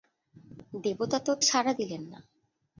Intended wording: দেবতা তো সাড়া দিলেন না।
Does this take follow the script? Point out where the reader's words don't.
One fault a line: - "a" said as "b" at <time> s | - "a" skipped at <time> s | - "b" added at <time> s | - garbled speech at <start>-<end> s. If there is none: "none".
none